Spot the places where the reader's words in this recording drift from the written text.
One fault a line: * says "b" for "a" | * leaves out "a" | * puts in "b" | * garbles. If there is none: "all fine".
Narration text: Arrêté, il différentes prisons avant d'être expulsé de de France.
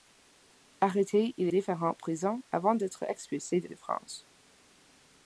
all fine